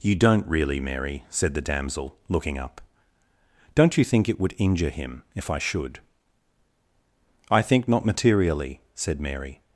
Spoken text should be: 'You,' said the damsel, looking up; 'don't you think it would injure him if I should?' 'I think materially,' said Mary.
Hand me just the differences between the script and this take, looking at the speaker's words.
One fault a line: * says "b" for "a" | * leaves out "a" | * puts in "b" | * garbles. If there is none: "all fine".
* puts in "don't really Mary"
* puts in "not"